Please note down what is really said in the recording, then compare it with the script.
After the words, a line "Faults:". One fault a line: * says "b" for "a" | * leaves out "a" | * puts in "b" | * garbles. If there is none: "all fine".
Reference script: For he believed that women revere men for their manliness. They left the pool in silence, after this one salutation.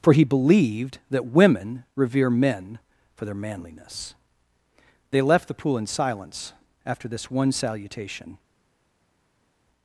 For he believed that women revere men for their manliness. They left the pool in silence, after this one salutation.
Faults:
all fine